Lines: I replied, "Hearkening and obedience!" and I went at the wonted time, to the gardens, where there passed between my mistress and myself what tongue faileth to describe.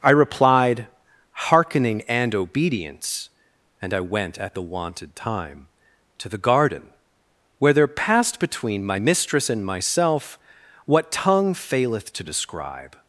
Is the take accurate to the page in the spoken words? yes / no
no